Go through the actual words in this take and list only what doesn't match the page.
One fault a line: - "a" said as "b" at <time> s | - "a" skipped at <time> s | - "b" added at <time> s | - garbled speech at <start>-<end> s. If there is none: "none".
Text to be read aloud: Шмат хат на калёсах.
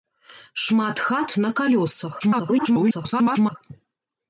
- garbled speech at 2.2-3.6 s